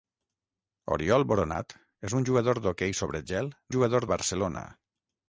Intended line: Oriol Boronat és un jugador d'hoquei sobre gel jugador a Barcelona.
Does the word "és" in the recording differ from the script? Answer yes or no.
no